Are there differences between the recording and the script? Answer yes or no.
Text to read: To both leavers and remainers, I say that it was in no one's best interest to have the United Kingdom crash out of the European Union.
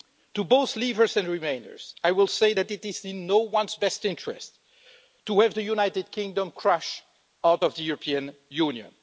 yes